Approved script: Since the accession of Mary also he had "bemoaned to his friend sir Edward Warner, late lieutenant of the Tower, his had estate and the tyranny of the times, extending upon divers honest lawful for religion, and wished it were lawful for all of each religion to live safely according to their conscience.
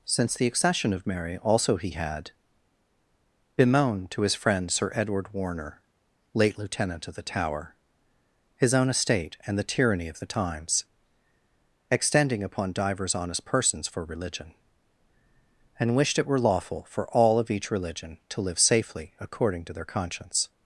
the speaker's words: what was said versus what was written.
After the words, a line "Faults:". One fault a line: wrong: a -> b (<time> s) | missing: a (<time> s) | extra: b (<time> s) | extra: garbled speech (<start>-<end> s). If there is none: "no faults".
Since the accession of Mary also he had "bemoaned to his friend sir Edward Warner, late lieutenant of the Tower, his own estate and the tyranny of the times, extending upon divers honest persons for religion, and wished it were lawful for all of each religion to live safely according to their conscience.
Faults:
wrong: had -> own (8.7 s)
wrong: lawful -> persons (13.4 s)